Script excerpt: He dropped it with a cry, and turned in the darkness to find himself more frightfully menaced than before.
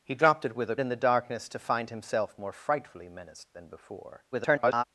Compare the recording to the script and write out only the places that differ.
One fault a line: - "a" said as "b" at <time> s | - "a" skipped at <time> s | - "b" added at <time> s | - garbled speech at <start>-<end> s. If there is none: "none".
- "cry and turned" skipped at 0.8 s
- garbled speech at 4.3-4.8 s